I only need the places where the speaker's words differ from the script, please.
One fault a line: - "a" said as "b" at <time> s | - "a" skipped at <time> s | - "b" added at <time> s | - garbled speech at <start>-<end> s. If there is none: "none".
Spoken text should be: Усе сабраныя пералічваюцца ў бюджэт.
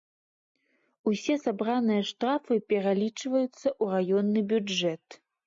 - "штрафы" added at 2.1 s
- "раённы" added at 4.0 s